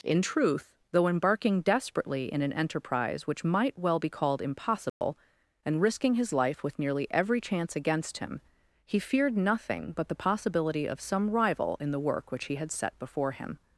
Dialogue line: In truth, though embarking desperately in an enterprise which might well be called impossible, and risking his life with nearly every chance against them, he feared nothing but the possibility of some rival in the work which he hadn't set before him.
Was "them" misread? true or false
true